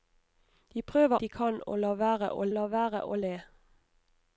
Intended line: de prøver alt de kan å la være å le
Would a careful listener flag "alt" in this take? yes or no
yes